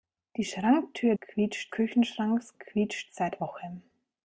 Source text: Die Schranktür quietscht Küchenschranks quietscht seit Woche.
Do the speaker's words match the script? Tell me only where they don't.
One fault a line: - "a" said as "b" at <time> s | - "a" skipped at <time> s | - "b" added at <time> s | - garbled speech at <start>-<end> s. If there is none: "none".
none